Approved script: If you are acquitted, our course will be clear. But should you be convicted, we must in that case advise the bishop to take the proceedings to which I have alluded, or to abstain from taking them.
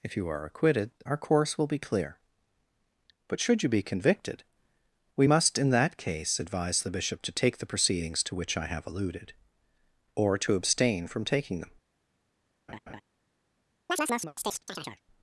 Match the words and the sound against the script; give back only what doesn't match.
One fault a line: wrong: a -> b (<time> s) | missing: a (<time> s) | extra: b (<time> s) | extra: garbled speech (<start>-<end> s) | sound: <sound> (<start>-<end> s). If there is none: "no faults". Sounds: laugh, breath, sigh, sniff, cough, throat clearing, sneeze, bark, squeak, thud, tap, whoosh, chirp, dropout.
sound: laugh (12.7-13.0 s)
sound: chirp (13.9-15.0 s)